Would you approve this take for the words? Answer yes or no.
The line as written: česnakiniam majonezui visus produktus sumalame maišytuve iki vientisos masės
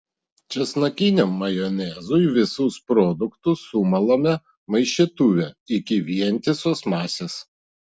yes